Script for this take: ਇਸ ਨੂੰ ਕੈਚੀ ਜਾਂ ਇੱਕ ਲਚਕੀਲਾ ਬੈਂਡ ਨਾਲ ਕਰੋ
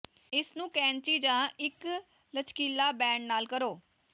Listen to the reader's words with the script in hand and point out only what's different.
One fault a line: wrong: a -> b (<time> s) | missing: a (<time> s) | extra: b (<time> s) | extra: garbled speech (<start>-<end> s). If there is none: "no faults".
no faults